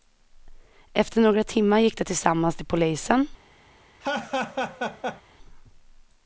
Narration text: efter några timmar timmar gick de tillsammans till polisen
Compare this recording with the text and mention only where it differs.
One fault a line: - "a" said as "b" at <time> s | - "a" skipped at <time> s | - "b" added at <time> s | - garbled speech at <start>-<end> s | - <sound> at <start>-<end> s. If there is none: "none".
- "timmar" skipped at 1.8 s
- laugh at 4.0-5.2 s